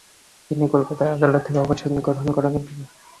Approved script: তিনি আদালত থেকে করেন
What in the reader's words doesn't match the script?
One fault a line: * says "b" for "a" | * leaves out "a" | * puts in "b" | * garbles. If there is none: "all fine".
* puts in "কলকাতা"
* puts in "অবসর গ্রহণ"